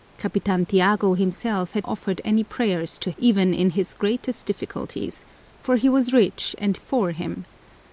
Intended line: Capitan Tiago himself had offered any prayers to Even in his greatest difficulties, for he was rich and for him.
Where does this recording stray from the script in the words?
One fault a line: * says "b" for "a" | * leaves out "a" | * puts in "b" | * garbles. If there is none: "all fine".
all fine